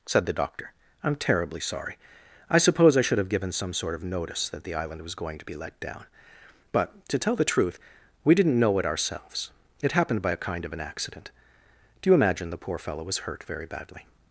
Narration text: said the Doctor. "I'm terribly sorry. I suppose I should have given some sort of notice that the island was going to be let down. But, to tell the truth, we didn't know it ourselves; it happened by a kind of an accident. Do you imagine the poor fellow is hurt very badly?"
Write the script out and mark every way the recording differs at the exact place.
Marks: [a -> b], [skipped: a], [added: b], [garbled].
said the Doctor. "I'm terribly sorry. I suppose I should have given some sort of notice that the island was going to be let down. But, to tell the truth, we didn't know it ourselves; it happened by a kind of an accident. Do you imagine the poor fellow [is -> was] hurt very badly?"